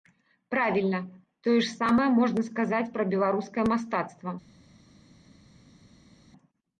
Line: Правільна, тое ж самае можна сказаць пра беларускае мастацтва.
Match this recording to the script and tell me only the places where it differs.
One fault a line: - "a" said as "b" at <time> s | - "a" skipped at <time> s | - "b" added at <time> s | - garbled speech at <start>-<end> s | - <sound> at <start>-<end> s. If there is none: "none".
none